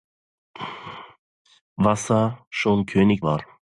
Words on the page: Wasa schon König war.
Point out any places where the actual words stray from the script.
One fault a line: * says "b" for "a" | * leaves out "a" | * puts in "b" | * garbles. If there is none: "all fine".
all fine